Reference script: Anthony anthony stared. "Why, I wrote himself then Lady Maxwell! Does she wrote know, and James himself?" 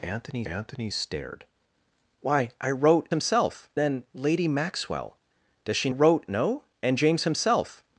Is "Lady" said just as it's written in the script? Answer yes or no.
yes